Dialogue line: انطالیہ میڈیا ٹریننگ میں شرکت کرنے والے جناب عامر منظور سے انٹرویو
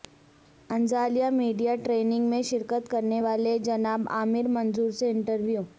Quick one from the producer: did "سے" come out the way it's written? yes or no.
yes